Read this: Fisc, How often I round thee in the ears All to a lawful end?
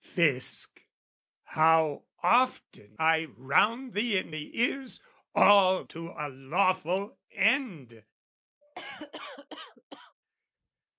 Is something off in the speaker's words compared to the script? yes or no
no